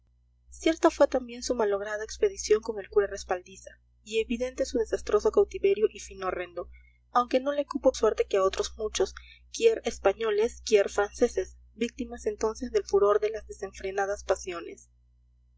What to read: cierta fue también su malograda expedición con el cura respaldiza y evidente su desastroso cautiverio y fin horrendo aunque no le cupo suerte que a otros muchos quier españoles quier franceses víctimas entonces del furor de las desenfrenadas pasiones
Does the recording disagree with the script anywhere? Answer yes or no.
no